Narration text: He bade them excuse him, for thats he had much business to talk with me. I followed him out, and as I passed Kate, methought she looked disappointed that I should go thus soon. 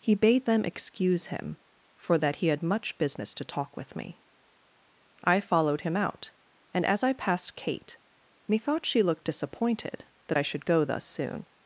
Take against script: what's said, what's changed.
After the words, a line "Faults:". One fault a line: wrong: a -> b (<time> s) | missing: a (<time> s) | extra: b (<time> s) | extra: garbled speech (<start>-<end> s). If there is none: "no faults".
He bade them excuse him, for that he had much business to talk with me. I followed him out, and as I passed Kate, methought she looked disappointed that I should go thus soon.
Faults:
wrong: thats -> that (2.2 s)